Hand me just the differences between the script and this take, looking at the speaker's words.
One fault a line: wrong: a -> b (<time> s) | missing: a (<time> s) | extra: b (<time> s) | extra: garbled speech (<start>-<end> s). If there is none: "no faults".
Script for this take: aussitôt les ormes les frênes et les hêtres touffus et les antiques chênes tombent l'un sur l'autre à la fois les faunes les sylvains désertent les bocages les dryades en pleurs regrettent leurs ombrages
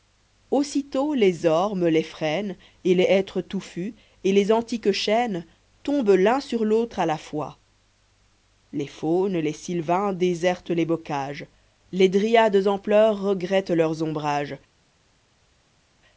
no faults